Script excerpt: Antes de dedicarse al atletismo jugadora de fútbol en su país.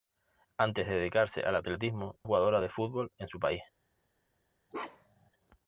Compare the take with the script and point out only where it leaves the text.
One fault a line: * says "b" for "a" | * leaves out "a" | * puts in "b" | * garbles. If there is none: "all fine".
all fine